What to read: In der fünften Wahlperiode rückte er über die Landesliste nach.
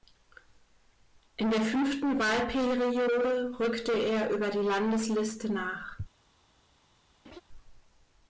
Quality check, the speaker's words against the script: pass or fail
pass